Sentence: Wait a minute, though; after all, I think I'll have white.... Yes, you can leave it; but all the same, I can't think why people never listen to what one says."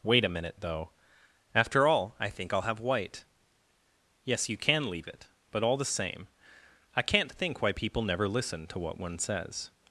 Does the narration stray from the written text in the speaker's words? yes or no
no